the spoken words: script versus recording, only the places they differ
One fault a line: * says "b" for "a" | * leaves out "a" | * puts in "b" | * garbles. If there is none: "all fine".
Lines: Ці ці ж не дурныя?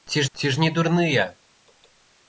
all fine